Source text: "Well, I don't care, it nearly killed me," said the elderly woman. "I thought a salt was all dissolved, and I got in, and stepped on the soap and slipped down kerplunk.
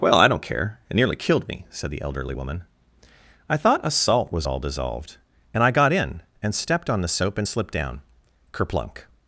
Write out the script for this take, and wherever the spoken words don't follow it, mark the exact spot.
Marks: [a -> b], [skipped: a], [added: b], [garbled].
"Well, I don't care, it nearly killed me," said the elderly woman. "I thought a salt was all dissolved, and I got in, and stepped on the soap and slipped down kerplunk.